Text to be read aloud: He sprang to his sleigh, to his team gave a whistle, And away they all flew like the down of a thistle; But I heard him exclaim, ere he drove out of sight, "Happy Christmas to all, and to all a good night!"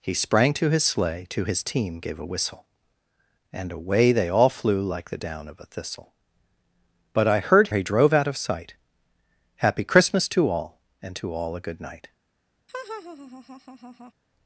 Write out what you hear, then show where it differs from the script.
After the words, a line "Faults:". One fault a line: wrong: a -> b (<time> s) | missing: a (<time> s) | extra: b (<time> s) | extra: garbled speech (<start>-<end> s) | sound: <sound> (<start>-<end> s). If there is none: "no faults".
He sprang to his sleigh, to his team gave a whistle, And away they all flew like the down of a thistle; But I heard he drove out of sight, "Happy Christmas to all, and to all a good night!"
Faults:
missing: him exclaim ere (7.7 s)
sound: laugh (12.7-14.1 s)